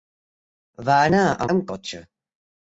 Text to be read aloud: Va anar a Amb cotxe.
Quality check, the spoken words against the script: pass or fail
pass